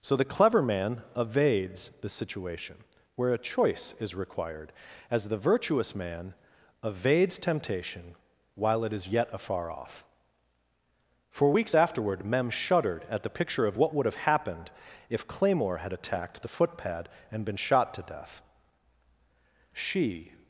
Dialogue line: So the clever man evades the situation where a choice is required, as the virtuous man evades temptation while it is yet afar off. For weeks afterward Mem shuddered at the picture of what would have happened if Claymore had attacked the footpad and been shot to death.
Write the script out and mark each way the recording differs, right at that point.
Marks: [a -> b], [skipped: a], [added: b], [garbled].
So the clever man evades the situation where a choice is required, as the virtuous man evades temptation while it is yet afar off. For weeks afterward Mem shuddered at the picture of what would have happened if Claymore had attacked the footpad and been shot to death. [added: She]